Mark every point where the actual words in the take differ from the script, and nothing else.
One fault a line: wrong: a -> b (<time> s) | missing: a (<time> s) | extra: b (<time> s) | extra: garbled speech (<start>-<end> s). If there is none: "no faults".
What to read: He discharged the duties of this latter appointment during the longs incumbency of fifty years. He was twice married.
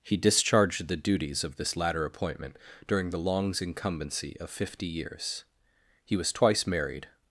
no faults